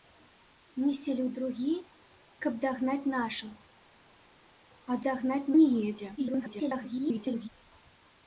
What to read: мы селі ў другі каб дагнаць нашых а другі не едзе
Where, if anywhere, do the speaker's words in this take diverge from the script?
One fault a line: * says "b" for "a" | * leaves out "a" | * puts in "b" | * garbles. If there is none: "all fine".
* says "дагнаць" for "другі"
* garbles